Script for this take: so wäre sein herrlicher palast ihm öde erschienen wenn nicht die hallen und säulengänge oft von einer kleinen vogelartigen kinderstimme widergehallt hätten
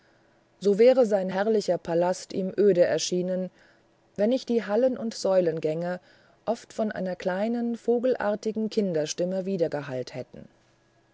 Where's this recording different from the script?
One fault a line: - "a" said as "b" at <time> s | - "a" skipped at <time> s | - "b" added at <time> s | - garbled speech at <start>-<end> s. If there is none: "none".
none